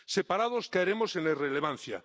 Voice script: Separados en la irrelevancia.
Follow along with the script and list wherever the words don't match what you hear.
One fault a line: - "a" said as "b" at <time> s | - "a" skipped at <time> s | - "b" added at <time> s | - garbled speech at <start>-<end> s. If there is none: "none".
- "caeremos" added at 0.7 s